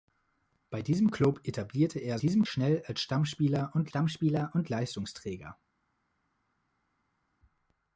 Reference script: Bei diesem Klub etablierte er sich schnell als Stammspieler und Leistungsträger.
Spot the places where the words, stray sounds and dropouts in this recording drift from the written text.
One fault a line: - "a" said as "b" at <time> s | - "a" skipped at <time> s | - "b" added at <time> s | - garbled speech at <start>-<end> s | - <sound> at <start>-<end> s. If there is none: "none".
- "sich" said as "diesem" at 2.2 s
- "Stammspieler und" added at 3.9 s